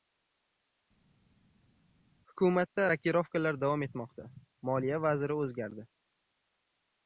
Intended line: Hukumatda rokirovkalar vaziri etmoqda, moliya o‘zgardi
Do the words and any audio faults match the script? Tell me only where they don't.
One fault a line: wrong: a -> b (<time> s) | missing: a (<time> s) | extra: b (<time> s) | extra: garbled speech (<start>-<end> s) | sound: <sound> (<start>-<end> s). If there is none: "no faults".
wrong: vaziri -> davom (3.6 s)
extra: vaziri (5.1 s)